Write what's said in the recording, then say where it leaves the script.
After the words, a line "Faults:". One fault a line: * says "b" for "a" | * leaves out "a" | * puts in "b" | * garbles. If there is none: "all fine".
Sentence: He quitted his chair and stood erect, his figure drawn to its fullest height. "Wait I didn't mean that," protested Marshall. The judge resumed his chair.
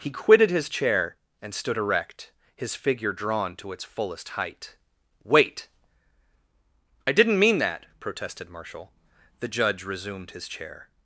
He quitted his chair and stood erect, his figure drawn to its fullest height. "Wait I didn't mean that," protested Marshall. The judge resumed his chair.
Faults:
all fine